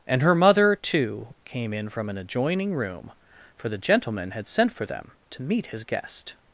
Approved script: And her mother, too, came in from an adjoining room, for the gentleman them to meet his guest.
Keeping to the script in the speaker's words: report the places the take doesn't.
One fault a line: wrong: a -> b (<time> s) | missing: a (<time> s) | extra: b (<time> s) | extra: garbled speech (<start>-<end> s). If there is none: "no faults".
extra: had sent for (4.3 s)